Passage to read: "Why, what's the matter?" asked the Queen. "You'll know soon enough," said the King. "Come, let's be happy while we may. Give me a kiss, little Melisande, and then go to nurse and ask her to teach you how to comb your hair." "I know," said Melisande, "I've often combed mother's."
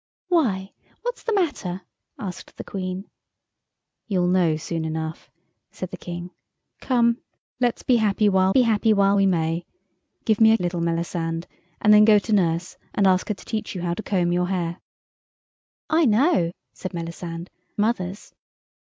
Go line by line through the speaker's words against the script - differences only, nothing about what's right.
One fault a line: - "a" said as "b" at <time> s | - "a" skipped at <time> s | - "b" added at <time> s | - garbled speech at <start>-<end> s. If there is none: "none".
- "be happy while" added at 8.5 s
- "kiss" skipped at 10.6 s
- "I've often combed" skipped at 17.5 s